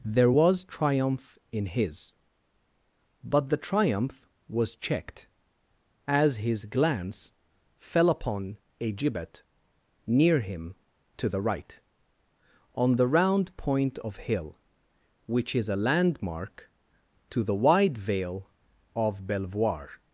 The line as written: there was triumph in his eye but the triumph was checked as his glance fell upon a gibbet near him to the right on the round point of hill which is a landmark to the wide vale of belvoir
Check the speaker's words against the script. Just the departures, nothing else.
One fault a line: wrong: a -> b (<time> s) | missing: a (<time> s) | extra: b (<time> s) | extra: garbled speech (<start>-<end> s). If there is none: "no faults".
missing: eye (2.1 s)